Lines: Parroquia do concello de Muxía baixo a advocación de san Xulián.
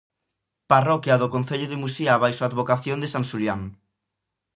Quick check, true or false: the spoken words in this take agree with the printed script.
true